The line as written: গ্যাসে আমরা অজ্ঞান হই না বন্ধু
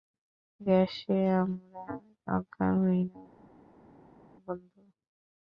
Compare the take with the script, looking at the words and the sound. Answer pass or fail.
pass